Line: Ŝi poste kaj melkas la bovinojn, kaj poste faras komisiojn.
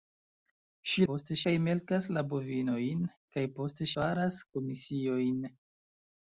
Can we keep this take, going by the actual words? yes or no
yes